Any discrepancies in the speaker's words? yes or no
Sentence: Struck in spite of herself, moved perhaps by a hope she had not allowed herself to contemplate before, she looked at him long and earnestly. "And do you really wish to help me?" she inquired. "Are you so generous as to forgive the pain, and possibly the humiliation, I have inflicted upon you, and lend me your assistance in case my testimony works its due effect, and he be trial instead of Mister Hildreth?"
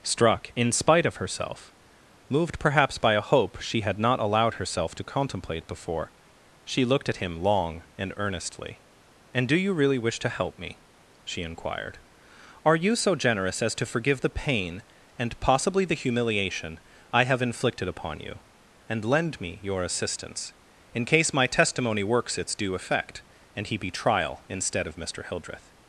no